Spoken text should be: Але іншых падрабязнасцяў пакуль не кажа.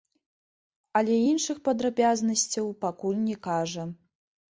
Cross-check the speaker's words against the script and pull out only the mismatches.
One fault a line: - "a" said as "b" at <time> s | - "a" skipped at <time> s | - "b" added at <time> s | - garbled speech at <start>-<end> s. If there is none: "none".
none